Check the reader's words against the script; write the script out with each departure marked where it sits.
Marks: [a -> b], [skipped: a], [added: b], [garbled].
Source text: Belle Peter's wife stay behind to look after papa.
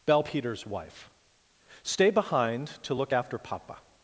Belle Peter's wife stay behind to look after papa.